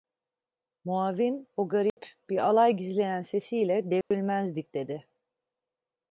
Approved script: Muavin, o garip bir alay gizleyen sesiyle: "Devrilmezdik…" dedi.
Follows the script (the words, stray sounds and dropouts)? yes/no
no